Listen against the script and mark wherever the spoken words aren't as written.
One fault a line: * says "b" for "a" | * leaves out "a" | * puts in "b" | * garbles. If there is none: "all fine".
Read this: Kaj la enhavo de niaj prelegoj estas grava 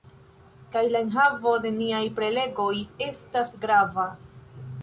all fine